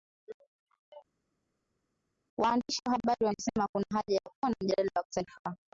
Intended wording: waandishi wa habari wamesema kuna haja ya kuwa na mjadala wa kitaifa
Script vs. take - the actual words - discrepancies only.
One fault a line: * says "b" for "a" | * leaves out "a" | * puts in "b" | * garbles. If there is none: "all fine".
all fine